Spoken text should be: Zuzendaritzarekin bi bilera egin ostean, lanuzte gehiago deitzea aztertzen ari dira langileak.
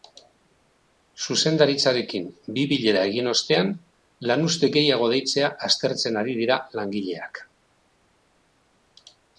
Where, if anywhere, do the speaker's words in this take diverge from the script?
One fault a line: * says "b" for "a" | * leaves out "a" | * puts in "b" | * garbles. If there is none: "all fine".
all fine